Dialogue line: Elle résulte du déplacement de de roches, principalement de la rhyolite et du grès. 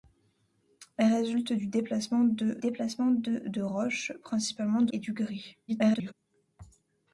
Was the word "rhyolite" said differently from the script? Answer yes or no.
yes